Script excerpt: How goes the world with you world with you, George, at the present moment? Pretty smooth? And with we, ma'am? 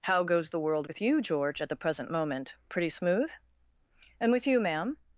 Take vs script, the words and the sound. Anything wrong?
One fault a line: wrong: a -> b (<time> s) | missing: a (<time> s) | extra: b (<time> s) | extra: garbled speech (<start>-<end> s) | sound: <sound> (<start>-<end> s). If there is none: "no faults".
missing: world with you (1.2 s)
wrong: we -> you (4.5 s)